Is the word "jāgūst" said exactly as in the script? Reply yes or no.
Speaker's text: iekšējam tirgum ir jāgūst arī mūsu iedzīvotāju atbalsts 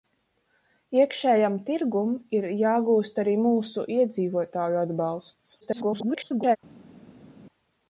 yes